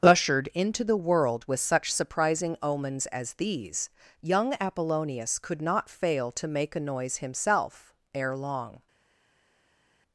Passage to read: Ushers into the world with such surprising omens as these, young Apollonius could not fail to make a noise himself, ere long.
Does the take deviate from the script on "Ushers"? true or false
true